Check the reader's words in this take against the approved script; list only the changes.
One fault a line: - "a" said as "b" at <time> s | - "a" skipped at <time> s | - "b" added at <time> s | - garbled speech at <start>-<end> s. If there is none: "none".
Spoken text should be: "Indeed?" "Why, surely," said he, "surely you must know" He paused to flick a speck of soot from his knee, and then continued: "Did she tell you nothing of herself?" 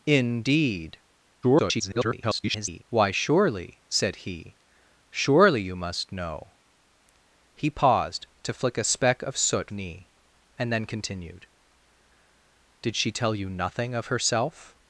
- garbled speech at 1.4-2.8 s
- "from his" skipped at 9.7 s